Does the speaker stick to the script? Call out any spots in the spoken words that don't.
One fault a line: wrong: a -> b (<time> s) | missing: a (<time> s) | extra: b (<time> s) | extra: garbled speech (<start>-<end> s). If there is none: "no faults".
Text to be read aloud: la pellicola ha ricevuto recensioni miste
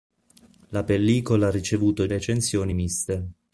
no faults